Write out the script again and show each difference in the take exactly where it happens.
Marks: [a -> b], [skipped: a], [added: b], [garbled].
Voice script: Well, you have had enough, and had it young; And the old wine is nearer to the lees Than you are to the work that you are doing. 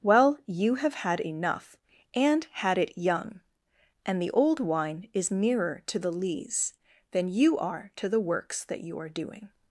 Well, you have had enough, and had it young; And the old wine is nearer to the lees Than you are to the [work -> works] that you are doing.